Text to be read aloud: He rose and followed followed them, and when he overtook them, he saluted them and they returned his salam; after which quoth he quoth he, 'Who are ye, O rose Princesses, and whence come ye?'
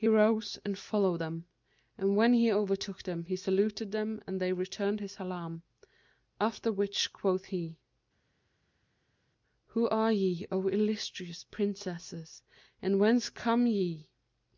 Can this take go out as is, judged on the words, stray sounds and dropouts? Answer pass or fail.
fail